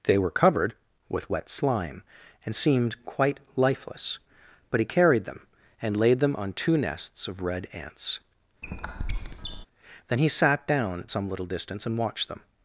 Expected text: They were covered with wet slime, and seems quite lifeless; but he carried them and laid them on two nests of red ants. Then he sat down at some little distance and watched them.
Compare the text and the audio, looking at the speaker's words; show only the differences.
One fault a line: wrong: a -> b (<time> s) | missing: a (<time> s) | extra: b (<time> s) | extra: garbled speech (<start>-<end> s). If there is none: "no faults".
wrong: seems -> seemed (2.5 s)